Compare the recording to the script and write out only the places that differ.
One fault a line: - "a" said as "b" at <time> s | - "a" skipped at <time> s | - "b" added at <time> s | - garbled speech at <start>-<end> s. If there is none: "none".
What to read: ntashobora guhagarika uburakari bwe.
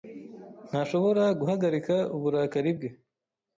none